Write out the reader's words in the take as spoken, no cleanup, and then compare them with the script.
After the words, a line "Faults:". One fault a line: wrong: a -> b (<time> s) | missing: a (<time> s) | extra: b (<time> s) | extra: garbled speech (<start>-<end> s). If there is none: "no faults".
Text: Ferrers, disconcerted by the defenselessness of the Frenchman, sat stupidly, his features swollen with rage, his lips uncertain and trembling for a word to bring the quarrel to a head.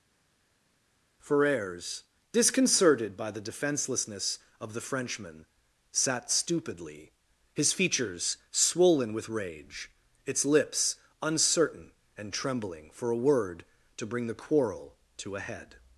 Ferrers, disconcerted by the defenselessness of the Frenchman, sat stupidly, his features swollen with rage, its lips uncertain and trembling for a word to bring the quarrel to a head.
Faults:
wrong: his -> its (10.2 s)